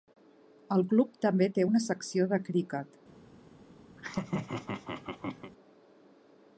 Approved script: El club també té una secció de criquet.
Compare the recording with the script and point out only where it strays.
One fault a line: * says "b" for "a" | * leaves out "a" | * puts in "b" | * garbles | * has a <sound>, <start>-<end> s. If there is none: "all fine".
* has a laugh, 4.0-5.5 s